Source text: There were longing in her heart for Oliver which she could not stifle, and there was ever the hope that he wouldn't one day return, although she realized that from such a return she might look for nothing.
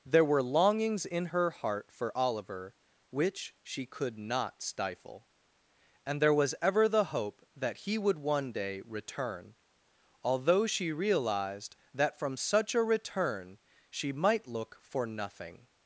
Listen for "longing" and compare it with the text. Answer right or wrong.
wrong